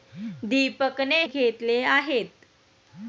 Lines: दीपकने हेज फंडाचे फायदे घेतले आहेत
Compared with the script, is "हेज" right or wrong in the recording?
wrong